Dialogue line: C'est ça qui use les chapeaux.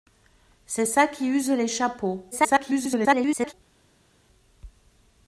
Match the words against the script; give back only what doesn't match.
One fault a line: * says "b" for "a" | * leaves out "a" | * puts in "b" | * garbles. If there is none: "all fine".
* garbles